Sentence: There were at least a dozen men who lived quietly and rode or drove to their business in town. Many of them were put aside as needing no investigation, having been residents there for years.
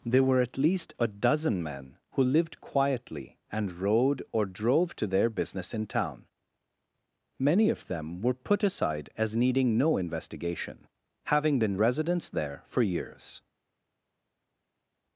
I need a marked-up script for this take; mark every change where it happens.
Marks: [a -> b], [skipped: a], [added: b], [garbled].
There were at least a dozen men who lived quietly and rode or drove to their business in town. Many of them were put aside as needing no investigation, having been residents there for years.